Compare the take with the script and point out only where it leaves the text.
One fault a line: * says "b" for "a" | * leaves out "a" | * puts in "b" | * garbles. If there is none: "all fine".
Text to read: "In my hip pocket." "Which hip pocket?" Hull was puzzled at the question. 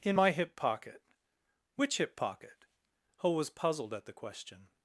* says "Ho" for "Hull"